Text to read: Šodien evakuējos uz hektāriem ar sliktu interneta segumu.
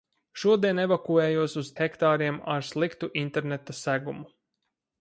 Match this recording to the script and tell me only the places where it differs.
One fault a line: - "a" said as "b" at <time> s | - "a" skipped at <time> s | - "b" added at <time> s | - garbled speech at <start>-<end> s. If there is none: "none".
none